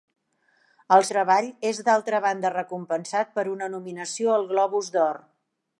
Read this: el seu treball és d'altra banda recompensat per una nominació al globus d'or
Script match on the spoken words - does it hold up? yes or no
no